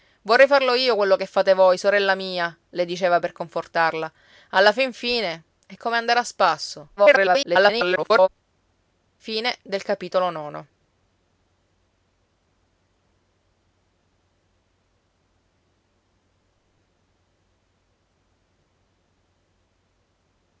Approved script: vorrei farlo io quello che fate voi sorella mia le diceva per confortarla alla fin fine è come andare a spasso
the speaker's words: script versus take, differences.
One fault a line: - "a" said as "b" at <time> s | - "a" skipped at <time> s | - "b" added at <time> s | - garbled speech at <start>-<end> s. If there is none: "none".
- garbled speech at 7.0-8.3 s